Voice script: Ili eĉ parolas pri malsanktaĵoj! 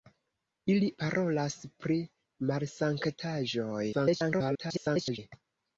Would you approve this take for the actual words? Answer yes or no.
no